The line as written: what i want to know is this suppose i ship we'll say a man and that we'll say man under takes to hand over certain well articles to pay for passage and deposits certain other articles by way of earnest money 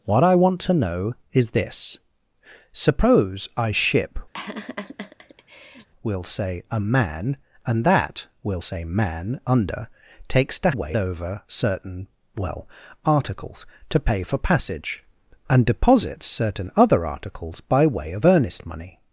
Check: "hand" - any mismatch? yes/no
yes